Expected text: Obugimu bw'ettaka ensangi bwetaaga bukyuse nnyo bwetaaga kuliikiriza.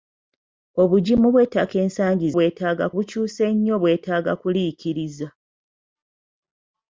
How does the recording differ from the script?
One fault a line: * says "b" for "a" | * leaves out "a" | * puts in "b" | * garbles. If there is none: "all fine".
all fine